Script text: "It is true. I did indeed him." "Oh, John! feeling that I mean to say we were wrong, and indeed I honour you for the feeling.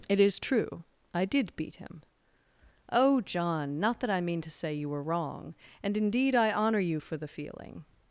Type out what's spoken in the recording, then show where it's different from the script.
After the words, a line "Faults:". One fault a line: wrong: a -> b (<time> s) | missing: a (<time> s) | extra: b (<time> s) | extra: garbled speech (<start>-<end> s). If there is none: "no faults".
"It is true. I did beat him." "Oh, John! not that I mean to say you were wrong, and indeed I honour you for the feeling.
Faults:
wrong: indeed -> beat (1.6 s)
wrong: feeling -> not (3.8 s)
wrong: we -> you (4.7 s)